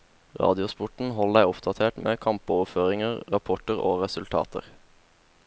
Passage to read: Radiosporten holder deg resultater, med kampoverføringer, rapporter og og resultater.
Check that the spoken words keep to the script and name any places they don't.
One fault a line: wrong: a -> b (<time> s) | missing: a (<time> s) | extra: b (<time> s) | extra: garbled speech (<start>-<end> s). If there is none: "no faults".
wrong: resultater -> oppdatert (1.5 s)
missing: og (4.0 s)